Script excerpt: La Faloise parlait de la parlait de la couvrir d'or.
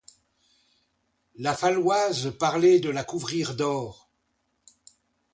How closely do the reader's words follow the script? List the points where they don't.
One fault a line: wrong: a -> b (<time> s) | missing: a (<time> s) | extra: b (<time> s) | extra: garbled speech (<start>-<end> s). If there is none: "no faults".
missing: parlait de la (3.0 s)